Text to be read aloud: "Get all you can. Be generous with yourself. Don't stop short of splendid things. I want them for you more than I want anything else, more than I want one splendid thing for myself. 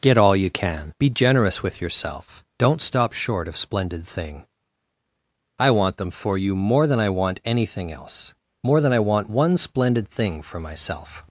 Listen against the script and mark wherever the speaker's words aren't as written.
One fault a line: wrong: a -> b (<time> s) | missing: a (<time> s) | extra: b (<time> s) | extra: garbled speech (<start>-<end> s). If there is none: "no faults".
wrong: things -> thing (4.1 s)